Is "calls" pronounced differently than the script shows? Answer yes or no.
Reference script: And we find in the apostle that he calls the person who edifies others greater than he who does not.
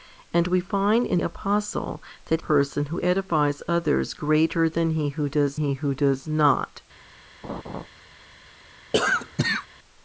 yes